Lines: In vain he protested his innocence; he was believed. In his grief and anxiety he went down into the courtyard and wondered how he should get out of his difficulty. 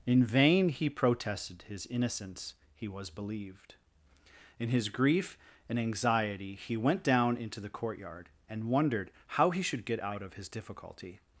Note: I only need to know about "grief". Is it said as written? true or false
true